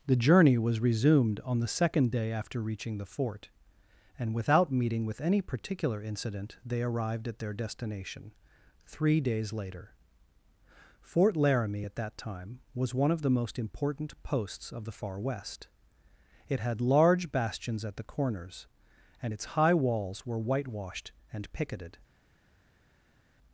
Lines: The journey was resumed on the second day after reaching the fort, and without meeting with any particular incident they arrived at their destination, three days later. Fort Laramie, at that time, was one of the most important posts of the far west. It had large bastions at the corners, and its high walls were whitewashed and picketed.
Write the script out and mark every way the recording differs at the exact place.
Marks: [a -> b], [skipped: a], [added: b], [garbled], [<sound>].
The journey was resumed on the second day after reaching the fort, and without meeting with any particular incident they arrived at their destination, three days later. Fort Laramie, at that time, was one of the most important posts of the far west. It had large bastions at the corners, and its high walls were whitewashed and picketed.